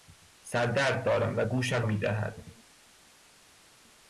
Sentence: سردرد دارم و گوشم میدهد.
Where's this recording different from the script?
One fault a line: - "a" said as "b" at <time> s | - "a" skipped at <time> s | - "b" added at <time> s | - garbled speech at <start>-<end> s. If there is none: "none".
none